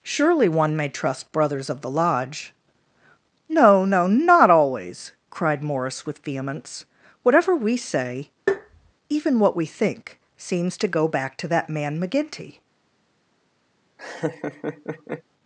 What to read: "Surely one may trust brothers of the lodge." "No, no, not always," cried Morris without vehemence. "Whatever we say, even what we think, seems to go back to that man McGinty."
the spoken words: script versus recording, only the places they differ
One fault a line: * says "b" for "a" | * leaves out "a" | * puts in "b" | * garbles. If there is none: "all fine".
* says "with" for "without"